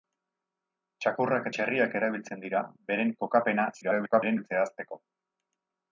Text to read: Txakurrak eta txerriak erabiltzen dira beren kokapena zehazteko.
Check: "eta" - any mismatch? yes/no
yes